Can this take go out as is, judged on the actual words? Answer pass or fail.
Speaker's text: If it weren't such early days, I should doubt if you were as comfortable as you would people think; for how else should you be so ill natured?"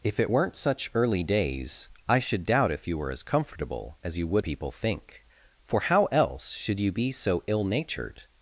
pass